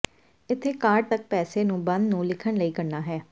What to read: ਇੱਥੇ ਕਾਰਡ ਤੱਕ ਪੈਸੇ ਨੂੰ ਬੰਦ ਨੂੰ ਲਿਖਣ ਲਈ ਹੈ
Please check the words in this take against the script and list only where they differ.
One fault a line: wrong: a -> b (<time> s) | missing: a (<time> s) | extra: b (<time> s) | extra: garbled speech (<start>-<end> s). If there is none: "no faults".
extra: ਕਰਨਾ (2.7 s)